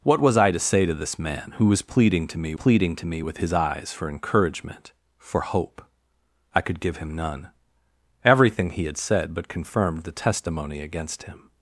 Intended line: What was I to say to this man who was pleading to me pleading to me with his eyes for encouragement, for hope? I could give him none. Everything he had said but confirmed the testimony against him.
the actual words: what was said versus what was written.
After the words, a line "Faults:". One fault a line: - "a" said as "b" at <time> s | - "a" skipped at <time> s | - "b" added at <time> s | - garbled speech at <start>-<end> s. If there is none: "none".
What was I to say to this man who was pleading to me pleading to me with his eyes for encouragement, for hope? I could give him none. Everything he had said but confirmed the testimony against him.
Faults:
none